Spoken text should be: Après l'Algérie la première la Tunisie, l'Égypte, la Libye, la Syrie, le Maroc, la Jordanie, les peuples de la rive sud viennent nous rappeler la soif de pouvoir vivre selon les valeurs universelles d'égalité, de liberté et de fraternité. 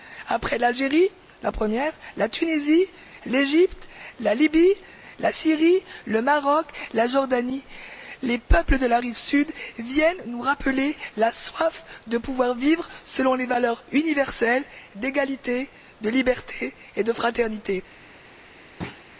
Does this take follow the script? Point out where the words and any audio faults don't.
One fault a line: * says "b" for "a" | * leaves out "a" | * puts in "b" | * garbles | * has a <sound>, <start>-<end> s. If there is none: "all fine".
* has a thud, 18.8-19.0 s